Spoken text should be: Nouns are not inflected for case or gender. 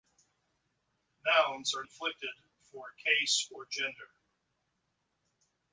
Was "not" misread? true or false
true